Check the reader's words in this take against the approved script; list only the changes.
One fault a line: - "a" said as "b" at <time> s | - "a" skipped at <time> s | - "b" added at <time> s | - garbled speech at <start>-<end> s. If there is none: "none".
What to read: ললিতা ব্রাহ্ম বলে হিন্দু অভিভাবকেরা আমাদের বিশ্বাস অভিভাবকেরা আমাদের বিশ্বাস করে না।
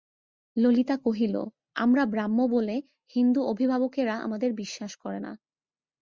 - "কহিল আমরা" added at 1.0 s
- "অভিভাবকেরা আমাদের বিশ্বাস" skipped at 4.9 s